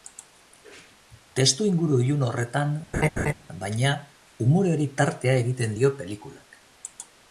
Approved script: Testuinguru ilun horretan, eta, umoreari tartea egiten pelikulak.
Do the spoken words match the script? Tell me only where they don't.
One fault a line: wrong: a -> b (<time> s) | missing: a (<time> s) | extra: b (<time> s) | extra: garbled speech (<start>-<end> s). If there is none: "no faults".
wrong: eta -> baina (3.6 s)
extra: dio (5.8 s)